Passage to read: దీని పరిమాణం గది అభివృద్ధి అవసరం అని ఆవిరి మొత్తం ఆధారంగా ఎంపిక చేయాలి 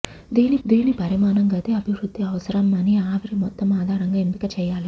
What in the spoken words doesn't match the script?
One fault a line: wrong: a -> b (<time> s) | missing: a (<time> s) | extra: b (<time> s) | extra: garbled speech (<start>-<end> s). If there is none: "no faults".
extra: దీని (0.6 s)